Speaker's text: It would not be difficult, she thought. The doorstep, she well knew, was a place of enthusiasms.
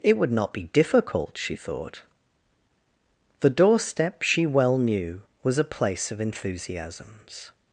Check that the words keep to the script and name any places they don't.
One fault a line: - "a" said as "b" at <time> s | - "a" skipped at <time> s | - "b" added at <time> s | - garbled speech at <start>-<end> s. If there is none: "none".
none